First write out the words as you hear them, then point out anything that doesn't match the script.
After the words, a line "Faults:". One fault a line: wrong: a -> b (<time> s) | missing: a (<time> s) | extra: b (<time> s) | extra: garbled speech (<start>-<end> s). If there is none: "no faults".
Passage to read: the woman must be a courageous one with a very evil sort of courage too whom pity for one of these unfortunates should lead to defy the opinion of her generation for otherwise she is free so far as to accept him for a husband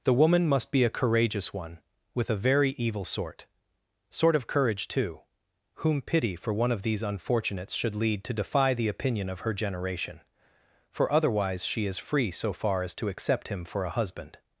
the woman must be a courageous one with a very evil sort sort of courage too whom pity for one of these unfortunates should lead to defy the opinion of her generation for otherwise she is free so far as to accept him for a husband
Faults:
extra: sort (4.1 s)